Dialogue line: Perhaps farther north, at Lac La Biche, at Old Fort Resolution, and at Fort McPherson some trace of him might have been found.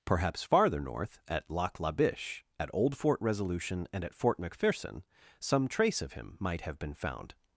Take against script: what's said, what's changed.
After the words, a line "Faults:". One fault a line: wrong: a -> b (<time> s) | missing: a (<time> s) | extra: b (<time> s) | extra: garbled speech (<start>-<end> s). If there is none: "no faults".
Perhaps farther north, at Lac La Biche, at Old Fort Resolution, and at Fort McPherson some trace of him might have been found.
Faults:
no faults